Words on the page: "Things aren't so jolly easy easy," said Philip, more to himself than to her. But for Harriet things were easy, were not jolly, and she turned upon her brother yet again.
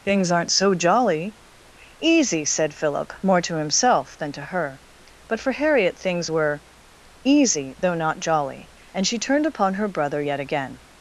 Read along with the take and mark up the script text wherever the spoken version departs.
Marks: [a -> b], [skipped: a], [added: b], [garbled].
"Things aren't so jolly easy [skipped: easy,"] said Philip, more to himself than to her. But for Harriet things were easy, [were -> though] not jolly, and she turned upon her brother yet again.